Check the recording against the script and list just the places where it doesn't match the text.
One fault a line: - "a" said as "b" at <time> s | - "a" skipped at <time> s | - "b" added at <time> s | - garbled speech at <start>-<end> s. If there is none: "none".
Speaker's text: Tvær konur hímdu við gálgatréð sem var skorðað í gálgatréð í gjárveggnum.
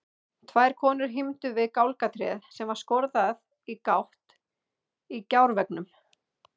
- "gálgatréð" said as "gátt" at 3.9 s